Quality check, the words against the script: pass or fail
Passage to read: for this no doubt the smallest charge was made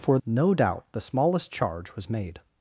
fail